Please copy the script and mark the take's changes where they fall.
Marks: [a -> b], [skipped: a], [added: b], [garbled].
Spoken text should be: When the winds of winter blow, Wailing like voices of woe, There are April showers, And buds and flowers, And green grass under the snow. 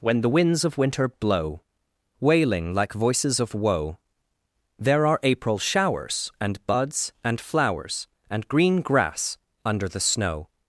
When the winds of winter blow, Wailing like voices of woe, There are April showers, And buds and flowers, And green grass under the snow.